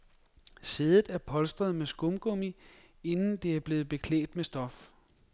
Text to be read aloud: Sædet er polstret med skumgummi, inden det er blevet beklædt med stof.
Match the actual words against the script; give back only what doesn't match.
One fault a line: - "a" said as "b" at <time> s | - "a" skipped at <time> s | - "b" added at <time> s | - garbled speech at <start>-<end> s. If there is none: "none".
none